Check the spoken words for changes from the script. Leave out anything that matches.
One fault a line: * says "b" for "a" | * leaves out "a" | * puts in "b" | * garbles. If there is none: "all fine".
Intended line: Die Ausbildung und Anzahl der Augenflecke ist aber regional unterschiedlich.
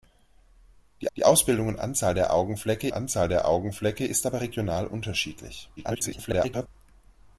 * puts in "die"
* puts in "Anzahl der Augenflecke"
* garbles